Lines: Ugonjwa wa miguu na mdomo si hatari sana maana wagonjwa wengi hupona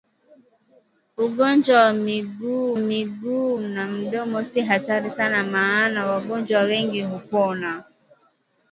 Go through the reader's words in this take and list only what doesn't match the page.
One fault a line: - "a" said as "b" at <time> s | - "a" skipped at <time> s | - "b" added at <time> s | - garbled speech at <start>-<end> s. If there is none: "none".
- "miguu" added at 2.8 s